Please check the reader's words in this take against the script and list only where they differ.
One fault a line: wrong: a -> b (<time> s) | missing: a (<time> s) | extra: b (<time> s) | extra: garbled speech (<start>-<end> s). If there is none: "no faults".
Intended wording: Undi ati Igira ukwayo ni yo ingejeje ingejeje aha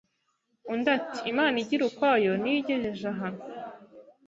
extra: Imana (1.3 s)
missing: ingejeje (3.1 s)